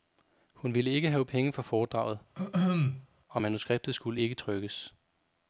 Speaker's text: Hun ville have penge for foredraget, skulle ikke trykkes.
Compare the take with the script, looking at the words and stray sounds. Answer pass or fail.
fail